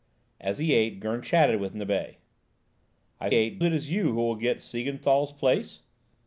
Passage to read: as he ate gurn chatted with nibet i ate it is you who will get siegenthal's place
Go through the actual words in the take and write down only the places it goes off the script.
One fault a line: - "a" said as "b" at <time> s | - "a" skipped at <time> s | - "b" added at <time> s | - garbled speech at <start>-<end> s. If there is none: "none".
none